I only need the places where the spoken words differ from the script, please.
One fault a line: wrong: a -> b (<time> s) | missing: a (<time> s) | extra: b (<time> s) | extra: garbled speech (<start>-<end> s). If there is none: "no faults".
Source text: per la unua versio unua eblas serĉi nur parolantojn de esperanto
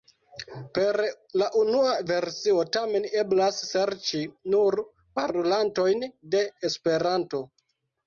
wrong: unua -> tamen (2.8 s)